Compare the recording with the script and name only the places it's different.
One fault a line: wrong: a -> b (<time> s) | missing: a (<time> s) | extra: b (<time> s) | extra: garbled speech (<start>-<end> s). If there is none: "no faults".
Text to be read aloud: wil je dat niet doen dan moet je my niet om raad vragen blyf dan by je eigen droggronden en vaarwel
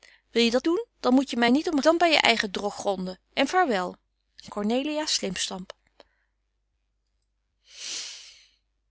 missing: niet (0.7 s)
missing: raad vragen blyf (1.8 s)